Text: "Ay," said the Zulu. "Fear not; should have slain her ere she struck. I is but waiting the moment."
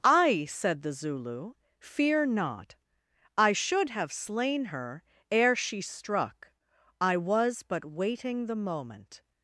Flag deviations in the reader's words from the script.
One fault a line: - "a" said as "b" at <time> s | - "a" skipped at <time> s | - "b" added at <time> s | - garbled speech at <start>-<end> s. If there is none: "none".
- "I" added at 3.4 s
- "is" said as "was" at 7.2 s